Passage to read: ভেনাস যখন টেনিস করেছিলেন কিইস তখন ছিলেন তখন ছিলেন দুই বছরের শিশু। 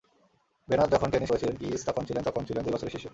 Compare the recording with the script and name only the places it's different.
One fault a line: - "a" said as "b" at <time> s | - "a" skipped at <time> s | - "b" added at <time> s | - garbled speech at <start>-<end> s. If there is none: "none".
none